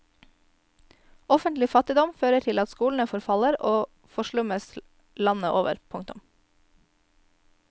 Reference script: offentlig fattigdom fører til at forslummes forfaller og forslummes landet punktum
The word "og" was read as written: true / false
true